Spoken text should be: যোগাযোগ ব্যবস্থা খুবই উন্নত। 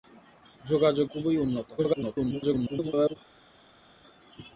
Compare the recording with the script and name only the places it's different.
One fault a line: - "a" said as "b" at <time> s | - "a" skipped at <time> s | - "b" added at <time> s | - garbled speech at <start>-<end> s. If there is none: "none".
- "ব্যবস্থা" skipped at 1.1 s
- garbled speech at 1.8-3.2 s